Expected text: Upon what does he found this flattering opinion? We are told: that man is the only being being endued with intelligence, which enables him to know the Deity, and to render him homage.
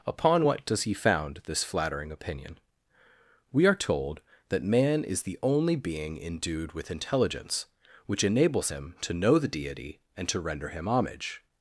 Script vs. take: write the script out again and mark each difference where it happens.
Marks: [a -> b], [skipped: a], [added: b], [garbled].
Upon what does he found this flattering opinion? We are told: that man is the only being [skipped: being] endued with intelligence, which enables him to know the Deity, and to render him homage.